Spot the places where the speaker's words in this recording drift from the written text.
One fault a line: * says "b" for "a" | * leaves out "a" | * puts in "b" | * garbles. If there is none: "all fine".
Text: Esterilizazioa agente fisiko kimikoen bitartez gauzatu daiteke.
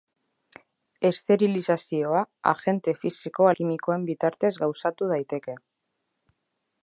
all fine